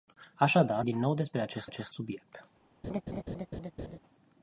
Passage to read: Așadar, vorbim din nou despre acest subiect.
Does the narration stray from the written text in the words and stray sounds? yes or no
yes